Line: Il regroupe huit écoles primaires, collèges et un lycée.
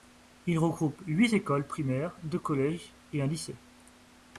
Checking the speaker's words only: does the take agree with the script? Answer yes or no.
no